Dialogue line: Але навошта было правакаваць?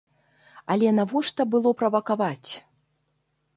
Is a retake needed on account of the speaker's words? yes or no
no